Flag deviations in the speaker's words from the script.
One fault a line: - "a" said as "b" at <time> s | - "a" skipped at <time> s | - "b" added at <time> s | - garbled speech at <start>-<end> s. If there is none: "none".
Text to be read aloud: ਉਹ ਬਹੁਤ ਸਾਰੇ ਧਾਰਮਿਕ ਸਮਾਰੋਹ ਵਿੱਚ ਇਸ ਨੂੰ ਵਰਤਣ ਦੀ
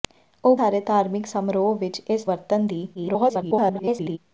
- "ਬਹੁਤ" skipped at 0.6 s
- "ਨੂੰ" skipped at 2.3 s
- garbled speech at 2.9-4.2 s